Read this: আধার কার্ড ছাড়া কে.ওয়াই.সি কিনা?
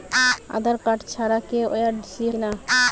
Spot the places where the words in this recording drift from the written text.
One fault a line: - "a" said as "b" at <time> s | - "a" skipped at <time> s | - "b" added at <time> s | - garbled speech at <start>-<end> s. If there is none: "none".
none